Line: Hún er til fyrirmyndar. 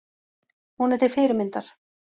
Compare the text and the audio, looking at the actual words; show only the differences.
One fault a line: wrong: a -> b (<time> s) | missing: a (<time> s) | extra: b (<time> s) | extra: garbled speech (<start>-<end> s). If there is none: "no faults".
no faults